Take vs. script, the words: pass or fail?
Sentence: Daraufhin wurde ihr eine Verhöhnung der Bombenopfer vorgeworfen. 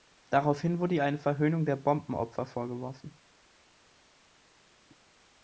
pass